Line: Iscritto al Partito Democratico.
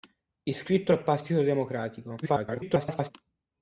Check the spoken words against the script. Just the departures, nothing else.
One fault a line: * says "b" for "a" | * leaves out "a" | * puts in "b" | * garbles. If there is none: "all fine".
* garbles